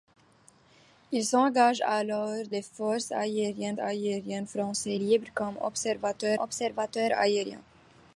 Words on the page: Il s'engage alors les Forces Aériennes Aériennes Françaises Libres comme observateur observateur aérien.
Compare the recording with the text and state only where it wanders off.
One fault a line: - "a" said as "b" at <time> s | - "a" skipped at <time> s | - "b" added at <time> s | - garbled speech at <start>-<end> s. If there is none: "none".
none